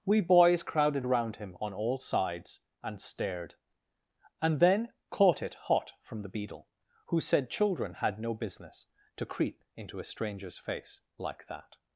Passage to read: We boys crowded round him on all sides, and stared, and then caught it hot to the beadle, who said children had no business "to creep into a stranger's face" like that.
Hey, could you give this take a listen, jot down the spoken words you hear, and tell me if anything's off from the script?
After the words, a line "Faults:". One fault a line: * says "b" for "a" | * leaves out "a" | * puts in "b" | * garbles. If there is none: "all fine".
We boys crowded round him on all sides, and stared, and then caught it hot from the beadle, who said children had no business "to creep into a stranger's face" like that.
Faults:
* says "from" for "to"